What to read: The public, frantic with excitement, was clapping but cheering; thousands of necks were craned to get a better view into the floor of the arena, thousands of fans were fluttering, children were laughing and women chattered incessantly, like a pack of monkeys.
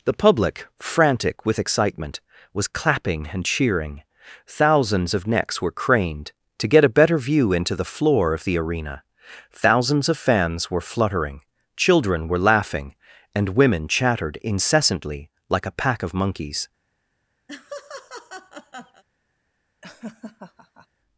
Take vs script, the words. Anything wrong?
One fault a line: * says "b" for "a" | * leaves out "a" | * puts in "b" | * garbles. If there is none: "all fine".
* says "and" for "but"